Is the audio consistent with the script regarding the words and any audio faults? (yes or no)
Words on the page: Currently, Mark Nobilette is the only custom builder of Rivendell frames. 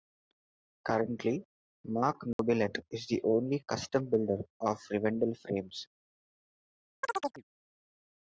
no